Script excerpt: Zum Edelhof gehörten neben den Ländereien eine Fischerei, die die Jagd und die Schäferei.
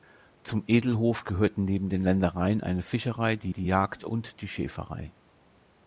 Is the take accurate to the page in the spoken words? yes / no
yes